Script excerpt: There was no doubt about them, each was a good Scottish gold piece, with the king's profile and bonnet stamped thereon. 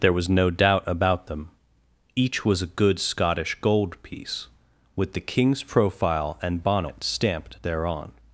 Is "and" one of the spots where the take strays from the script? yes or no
no